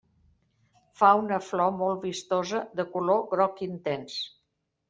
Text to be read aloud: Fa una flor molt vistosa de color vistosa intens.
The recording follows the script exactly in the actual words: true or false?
false